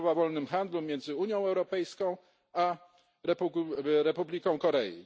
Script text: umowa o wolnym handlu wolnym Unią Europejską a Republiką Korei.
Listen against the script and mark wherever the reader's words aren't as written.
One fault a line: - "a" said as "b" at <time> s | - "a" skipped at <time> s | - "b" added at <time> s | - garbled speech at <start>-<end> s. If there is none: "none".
- "wolnym" said as "między" at 0.8 s